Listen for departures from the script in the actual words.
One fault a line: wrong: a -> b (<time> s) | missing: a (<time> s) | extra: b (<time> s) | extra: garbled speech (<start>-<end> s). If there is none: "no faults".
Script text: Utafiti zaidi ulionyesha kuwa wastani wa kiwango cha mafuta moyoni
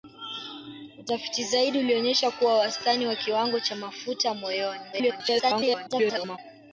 extra: garbled speech (4.9-6.4 s)